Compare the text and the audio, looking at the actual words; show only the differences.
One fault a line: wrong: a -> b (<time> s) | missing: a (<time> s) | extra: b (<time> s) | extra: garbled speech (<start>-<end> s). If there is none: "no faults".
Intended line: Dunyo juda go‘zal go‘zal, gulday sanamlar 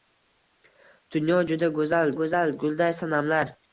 no faults